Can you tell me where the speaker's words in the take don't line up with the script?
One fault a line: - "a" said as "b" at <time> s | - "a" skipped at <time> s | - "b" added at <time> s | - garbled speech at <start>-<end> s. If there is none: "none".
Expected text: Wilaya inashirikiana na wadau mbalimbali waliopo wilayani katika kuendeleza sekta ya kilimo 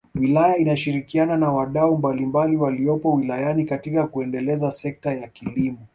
none